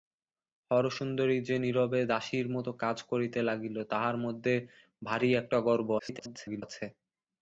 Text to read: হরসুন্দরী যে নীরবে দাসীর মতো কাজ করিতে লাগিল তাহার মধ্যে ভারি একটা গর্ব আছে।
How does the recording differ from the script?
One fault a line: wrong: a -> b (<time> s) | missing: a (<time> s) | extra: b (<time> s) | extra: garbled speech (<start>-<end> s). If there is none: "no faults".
extra: garbled speech (6.0-6.6 s)